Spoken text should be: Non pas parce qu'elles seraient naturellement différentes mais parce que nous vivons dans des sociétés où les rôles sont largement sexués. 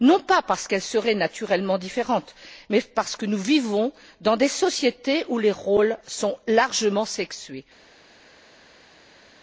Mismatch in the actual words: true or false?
false